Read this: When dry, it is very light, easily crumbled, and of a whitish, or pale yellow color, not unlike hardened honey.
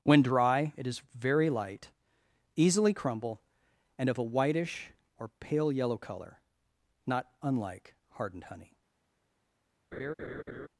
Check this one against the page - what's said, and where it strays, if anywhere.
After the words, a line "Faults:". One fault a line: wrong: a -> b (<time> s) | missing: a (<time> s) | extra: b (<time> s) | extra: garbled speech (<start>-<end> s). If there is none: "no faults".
When dry, it is very light, easily crumble, and of a whitish, or pale yellow color, not unlike hardened honey.
Faults:
wrong: crumbled -> crumble (2.9 s)